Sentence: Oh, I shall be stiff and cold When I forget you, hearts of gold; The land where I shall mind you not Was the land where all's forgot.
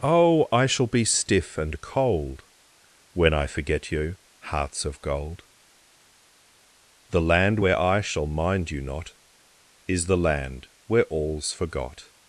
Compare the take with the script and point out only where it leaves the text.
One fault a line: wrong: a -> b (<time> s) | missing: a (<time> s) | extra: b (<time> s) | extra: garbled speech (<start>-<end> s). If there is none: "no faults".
wrong: Was -> Is (9.9 s)